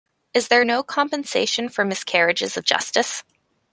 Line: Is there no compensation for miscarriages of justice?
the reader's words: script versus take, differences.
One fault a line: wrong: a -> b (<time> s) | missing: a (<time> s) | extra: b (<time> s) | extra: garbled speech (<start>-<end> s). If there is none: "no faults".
no faults